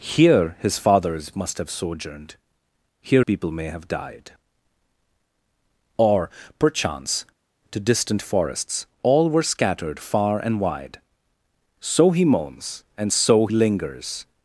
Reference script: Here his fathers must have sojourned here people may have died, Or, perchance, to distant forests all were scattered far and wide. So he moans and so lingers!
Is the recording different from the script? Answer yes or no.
no